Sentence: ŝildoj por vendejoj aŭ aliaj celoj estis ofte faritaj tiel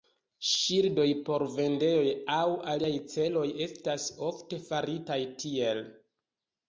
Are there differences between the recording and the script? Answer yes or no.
yes